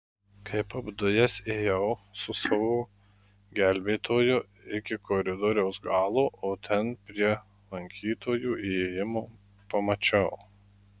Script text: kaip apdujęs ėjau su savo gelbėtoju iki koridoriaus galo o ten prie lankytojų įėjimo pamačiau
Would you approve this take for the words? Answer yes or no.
yes